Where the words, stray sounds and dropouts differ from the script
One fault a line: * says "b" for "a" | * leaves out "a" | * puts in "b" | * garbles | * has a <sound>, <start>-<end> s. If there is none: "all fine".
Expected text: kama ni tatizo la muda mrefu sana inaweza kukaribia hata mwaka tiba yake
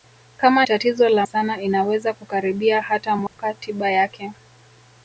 * leaves out "ni"
* leaves out "muda mrefu"
* has a dropout, 3.3-3.4 s